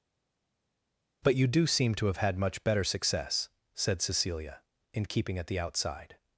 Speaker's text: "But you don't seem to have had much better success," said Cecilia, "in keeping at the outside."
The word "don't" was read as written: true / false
false